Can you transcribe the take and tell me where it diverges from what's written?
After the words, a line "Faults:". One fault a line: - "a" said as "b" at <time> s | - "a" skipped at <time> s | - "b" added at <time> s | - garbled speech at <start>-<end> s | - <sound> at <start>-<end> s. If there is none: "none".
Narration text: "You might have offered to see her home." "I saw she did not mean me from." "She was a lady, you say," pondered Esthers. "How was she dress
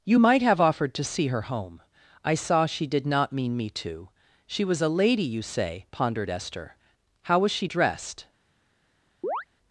"You might have offered to see her home." "I saw she did not mean me to." "She was a lady, you say," pondered Esther. "How was she dressed
Faults:
- "from" said as "to" at 3.8 s
- "Esthers" said as "Esther" at 6.3 s
- "dress" said as "dressed" at 7.6 s
- chirp at 9.2-9.4 s